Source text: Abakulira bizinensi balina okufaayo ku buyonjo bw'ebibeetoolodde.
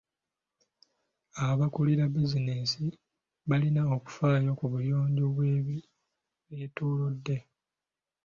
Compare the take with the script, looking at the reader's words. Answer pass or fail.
pass